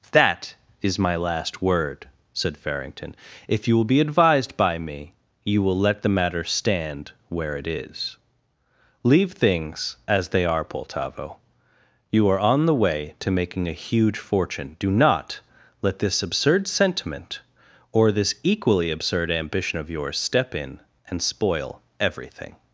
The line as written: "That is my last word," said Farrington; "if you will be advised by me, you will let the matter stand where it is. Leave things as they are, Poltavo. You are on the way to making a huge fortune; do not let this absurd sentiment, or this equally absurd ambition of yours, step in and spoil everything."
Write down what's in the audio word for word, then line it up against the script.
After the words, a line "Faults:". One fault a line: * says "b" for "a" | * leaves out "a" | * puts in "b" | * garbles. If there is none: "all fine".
"That is my last word," said Farrington; "if you will be advised by me, you will let the matter stand where it is. Leave things as they are, Poltavo. You are on the way to making a huge fortune; do not let this absurd sentiment, or this equally absurd ambition of yours, step in and spoil everything."
Faults:
all fine